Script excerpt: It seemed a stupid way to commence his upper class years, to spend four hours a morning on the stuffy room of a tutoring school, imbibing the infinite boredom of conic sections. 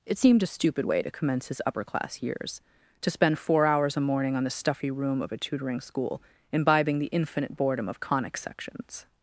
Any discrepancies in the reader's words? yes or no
no